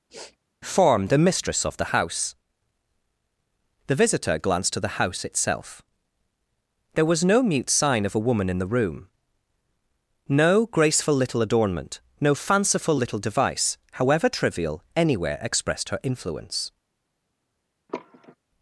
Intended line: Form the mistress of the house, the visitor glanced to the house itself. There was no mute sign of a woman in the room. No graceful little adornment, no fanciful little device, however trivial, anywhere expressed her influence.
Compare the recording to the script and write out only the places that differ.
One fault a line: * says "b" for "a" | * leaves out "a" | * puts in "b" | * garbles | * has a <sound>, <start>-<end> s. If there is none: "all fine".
* has a sniff, 0.1-0.4 s
* has a sigh, 17.9-18.4 s